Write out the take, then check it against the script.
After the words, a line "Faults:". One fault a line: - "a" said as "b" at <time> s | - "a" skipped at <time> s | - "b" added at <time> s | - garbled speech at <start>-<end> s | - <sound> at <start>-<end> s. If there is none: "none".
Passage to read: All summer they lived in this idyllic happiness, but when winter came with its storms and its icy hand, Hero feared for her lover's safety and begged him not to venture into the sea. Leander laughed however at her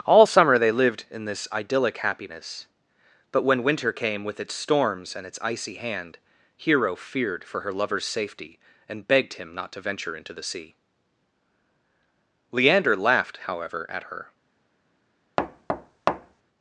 All summer they lived in this idyllic happiness, but when winter came with its storms and its icy hand, Hero feared for her lover's safety and begged him not to venture into the sea. Leander laughed however at her
Faults:
- thud at 15.4-16.4 s